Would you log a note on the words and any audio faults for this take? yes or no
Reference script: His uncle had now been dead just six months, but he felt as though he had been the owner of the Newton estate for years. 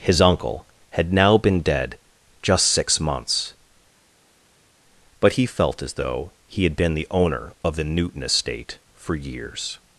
no